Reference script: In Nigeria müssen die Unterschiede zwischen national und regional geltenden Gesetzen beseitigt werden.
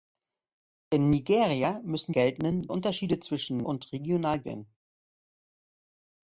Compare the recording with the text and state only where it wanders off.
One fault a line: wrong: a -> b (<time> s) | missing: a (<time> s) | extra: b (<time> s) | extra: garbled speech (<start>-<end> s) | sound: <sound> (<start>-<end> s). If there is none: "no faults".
wrong: die -> geltenden (2.1 s)
missing: national (3.7 s)
missing: geltenden Gesetzen beseitigt (4.4 s)